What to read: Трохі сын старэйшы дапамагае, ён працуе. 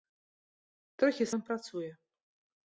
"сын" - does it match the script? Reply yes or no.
no